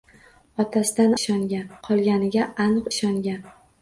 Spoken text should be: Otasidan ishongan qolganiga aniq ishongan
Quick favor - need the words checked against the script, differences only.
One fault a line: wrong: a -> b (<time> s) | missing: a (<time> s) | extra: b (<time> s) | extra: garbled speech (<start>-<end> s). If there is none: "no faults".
no faults